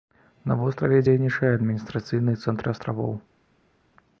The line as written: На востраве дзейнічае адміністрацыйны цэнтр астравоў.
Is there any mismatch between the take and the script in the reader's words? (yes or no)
no